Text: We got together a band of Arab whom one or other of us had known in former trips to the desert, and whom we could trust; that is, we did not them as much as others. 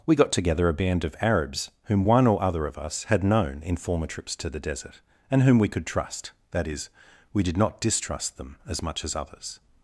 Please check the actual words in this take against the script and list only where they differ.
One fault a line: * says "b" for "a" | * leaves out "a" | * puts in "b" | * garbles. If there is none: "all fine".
* says "Arabs" for "Arab"
* puts in "distrust"